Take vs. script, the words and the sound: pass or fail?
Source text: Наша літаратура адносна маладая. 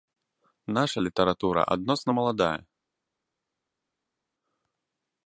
pass